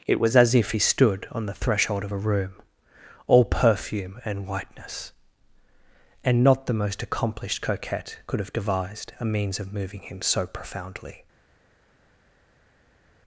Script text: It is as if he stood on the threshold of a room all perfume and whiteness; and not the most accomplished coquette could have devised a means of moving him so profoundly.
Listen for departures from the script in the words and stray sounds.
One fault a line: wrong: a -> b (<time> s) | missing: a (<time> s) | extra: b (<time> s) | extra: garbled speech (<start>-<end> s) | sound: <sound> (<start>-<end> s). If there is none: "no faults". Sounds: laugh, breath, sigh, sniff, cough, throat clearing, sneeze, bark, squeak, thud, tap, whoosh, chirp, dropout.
wrong: is -> was (0.2 s)